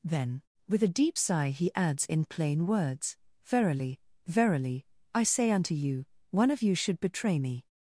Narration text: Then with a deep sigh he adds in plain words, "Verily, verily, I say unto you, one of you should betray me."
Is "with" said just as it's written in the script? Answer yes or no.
yes